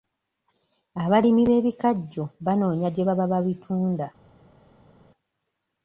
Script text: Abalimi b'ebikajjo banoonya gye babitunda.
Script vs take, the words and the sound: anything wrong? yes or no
yes